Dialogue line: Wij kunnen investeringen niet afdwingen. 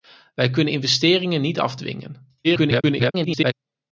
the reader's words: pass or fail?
fail